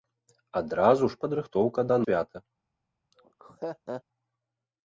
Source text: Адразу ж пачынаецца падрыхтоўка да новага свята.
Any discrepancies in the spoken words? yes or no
yes